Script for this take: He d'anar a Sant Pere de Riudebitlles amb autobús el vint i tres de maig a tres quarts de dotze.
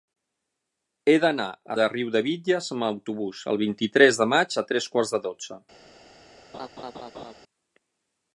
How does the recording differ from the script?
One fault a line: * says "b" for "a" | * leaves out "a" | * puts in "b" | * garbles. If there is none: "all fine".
* leaves out "Sant Pere"